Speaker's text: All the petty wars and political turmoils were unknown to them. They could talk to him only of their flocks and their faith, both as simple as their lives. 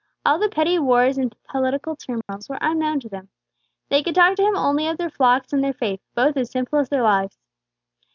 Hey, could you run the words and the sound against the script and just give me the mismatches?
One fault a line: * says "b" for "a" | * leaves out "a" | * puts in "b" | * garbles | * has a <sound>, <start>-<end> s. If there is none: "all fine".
* has a dropout, 2.2-2.3 s